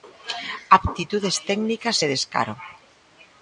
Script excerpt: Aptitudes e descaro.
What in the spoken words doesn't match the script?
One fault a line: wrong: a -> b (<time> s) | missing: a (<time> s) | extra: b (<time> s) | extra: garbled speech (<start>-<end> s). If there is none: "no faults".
extra: técnicas (1.5 s)